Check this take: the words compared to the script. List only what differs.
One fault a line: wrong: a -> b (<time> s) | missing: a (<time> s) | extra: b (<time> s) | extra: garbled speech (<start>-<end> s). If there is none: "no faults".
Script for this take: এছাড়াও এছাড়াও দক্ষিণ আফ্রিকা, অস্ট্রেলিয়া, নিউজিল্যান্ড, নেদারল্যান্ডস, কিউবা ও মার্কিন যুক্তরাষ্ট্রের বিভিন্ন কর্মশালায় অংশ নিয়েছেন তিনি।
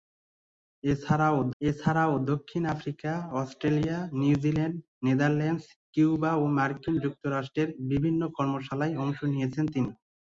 no faults